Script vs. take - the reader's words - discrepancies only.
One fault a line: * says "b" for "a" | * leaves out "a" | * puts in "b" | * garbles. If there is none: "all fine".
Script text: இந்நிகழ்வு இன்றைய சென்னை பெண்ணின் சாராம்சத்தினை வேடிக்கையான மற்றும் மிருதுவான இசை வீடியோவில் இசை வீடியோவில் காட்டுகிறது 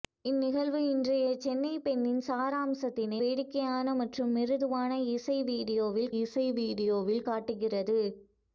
all fine